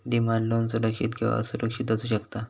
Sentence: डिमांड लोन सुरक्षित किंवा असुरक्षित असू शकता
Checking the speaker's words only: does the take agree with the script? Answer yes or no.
yes